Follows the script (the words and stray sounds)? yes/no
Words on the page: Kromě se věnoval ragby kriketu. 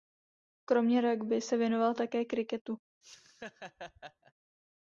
no